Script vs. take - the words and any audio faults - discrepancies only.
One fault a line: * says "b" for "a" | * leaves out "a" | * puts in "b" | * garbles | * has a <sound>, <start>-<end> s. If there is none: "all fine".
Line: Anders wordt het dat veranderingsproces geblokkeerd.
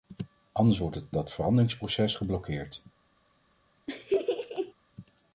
* has a laugh, 3.9-4.7 s